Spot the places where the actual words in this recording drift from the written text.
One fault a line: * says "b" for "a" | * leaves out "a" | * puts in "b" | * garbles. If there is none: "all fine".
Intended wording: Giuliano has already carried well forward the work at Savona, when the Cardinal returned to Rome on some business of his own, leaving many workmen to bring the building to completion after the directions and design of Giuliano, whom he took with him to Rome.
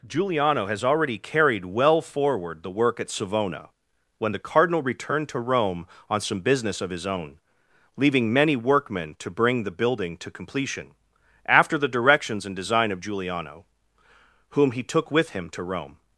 all fine